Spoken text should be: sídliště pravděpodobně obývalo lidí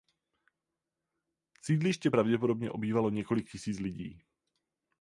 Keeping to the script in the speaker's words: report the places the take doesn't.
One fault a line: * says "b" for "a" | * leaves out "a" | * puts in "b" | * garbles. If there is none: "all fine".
* puts in "několik tisíc"